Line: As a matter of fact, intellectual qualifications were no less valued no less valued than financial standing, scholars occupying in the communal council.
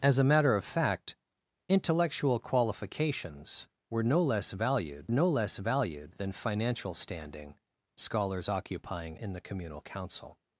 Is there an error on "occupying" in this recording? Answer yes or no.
no